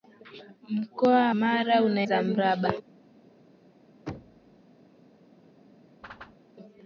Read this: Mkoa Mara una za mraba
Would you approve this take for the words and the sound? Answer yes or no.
no